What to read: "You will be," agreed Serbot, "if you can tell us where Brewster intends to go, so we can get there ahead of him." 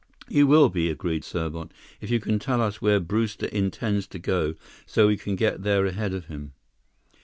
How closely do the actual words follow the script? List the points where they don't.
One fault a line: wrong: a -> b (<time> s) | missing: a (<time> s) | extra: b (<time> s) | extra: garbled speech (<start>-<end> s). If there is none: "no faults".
no faults